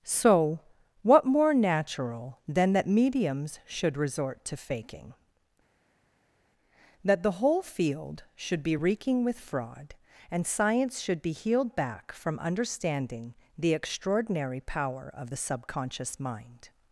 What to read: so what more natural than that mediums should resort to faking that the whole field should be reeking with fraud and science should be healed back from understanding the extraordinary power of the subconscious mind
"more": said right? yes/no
yes